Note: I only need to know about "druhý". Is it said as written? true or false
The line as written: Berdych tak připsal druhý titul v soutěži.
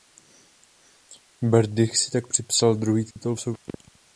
true